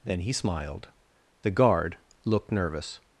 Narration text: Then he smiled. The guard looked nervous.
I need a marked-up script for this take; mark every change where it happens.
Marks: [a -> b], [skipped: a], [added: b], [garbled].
Then he smiled. The guard looked nervous.